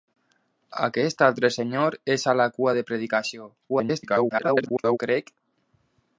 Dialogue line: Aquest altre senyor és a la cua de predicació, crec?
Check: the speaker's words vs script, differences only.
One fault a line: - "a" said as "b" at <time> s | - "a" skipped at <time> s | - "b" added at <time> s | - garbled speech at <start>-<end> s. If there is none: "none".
- garbled speech at 3.7-5.0 s